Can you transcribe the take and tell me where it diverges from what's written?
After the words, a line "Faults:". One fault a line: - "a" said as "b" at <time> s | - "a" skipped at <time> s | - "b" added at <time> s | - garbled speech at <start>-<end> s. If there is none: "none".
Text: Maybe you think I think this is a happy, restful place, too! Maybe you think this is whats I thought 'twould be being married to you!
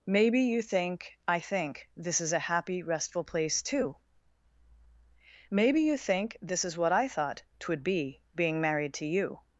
Maybe you think I think this is a happy, restful place, too! Maybe you think this is what I thought 'twould be being married to you!
Faults:
- "whats" said as "what" at 6.8 s